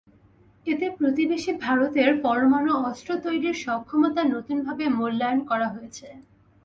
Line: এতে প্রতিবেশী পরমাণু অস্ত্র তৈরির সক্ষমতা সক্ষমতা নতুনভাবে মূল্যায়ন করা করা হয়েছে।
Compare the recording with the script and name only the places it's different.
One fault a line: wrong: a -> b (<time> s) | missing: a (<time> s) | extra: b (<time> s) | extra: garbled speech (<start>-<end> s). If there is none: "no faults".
extra: ভারতের (1.6 s)
missing: সক্ষমতা (4.2 s)
missing: করা (5.7 s)